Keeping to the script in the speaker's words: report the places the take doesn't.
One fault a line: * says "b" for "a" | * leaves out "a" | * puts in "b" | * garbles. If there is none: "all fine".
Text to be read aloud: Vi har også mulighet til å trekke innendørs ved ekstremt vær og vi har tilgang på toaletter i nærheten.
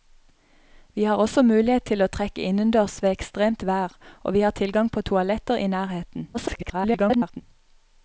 * garbles